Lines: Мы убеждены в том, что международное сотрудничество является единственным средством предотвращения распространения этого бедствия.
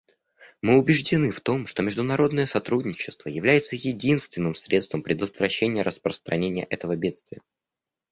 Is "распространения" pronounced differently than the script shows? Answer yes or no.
no